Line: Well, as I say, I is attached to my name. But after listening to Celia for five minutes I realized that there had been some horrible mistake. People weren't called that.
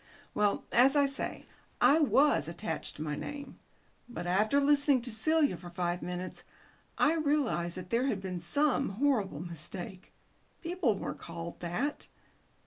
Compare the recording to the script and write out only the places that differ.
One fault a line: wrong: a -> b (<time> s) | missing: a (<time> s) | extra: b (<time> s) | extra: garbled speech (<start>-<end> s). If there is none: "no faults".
wrong: is -> was (2.0 s)